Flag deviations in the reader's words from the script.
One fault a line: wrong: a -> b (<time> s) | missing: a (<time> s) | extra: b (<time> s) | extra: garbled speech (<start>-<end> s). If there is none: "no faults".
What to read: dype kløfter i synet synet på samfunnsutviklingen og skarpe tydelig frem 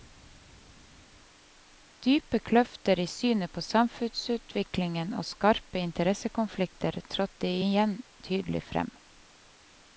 missing: synet (3.5 s)
extra: interessekonflikter trådte igjen (5.8 s)